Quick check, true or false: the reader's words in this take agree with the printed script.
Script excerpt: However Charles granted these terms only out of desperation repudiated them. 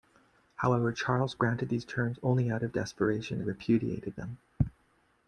true